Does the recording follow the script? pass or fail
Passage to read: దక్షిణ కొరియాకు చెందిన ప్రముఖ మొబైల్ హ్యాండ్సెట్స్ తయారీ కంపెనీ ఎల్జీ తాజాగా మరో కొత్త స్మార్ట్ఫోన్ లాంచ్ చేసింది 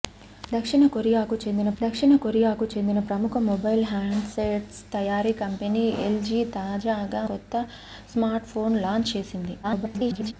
fail